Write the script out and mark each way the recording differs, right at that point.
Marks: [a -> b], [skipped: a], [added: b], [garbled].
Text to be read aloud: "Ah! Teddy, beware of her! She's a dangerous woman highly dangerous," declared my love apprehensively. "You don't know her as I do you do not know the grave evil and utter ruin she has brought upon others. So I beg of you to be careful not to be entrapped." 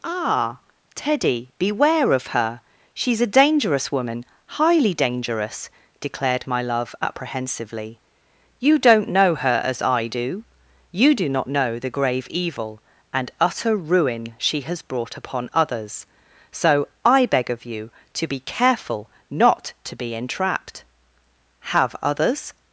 "Ah! Teddy, beware of her! She's a dangerous woman highly dangerous," declared my love apprehensively. "You don't know her as I do you do not know the grave evil and utter ruin she has brought upon others. So I beg of you to be careful not to be entrapped." [added: Have others]